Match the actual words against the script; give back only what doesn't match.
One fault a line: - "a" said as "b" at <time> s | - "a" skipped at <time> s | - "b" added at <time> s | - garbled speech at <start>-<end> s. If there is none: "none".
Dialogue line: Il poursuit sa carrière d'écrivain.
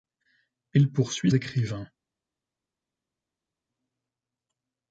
- "sa carrière" skipped at 1.3 s